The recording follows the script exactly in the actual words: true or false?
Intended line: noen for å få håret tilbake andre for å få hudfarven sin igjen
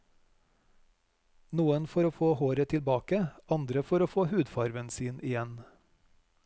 true